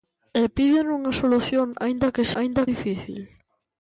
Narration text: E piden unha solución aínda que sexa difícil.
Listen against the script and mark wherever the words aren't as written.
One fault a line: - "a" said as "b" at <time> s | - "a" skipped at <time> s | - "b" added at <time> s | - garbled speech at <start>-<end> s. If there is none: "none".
- "sexa" said as "aínda" at 2.4 s